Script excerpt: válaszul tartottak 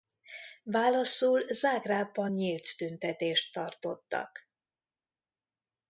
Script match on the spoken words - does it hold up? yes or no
no